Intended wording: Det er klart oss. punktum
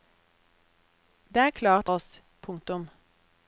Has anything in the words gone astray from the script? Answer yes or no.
no